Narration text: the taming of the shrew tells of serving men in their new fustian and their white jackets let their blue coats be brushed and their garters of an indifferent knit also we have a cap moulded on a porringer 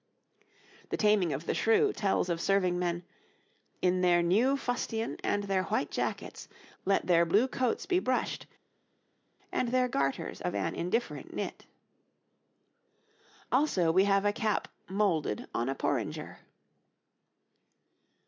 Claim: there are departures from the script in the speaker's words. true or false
false